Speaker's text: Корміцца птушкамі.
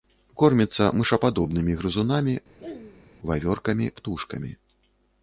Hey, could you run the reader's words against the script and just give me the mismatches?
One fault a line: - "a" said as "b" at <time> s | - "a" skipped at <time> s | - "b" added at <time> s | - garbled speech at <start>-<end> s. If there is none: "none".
- "мышападобнымі грызунамі вавёркамі" added at 1.0 s